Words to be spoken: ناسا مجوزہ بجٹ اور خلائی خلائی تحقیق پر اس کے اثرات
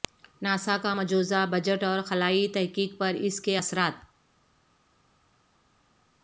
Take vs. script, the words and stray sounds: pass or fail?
fail